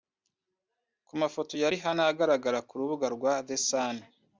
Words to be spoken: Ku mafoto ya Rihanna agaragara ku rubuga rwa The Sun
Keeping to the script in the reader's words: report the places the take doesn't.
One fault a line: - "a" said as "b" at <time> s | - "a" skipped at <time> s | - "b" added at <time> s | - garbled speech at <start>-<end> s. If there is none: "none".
none